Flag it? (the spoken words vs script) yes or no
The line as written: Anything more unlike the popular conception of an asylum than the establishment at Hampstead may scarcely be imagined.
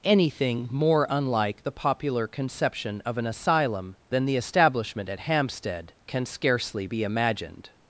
yes